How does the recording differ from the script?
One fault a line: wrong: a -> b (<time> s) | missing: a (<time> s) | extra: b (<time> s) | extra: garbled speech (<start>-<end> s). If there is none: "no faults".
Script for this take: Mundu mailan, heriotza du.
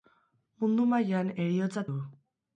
no faults